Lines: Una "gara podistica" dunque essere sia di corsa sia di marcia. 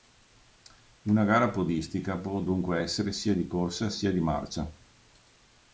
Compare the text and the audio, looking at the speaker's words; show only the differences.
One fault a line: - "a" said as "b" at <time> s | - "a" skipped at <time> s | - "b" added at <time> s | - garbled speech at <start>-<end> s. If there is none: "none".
- "può" added at 2.2 s